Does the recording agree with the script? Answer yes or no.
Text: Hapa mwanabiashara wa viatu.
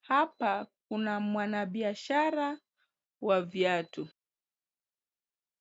no